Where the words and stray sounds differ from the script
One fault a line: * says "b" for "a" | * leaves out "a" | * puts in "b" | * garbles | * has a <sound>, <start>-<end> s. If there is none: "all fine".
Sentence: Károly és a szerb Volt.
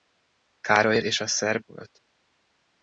all fine